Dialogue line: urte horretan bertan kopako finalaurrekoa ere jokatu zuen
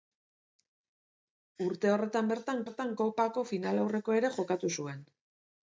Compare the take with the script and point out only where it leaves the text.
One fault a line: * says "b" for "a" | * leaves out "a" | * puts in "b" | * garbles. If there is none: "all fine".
* puts in "bertan"